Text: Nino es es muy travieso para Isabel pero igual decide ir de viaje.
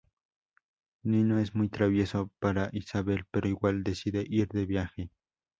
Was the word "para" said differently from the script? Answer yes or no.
no